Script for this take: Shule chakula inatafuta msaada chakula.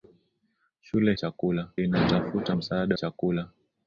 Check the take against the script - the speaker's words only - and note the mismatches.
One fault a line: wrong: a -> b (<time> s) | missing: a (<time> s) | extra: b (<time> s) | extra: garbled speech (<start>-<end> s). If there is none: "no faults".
no faults